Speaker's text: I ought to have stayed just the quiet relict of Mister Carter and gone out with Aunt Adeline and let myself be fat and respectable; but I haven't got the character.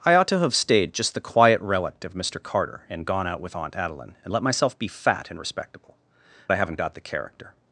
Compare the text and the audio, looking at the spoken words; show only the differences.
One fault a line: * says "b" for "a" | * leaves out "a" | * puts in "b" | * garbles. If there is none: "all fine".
* leaves out "but"